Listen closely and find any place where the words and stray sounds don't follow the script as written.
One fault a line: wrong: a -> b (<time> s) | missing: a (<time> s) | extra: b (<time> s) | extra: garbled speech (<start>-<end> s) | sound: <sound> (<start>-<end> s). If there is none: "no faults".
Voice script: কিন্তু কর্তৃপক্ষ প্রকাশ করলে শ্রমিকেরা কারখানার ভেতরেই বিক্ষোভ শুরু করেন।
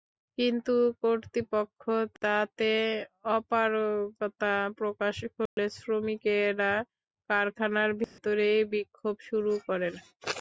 extra: তাতে অপারগতা (2.2 s)
sound: dropout (5.5-5.6 s)
sound: dropout (8.0-8.2 s)